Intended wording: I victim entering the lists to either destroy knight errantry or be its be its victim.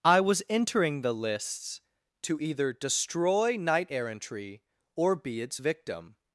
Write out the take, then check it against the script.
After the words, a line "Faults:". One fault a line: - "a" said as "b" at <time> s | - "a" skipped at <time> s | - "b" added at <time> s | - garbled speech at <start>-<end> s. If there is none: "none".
I was entering the lists to either destroy knight errantry or be its victim.
Faults:
- "victim" said as "was" at 0.2 s
- "be its" skipped at 5.6 s